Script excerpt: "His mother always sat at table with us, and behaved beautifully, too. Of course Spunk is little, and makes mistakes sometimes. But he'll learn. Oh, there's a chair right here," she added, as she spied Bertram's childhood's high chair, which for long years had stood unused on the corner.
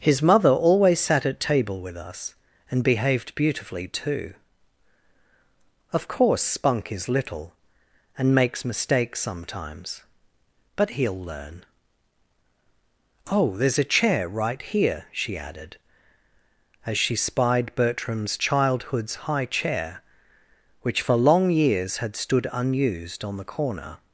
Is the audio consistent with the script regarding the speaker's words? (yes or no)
yes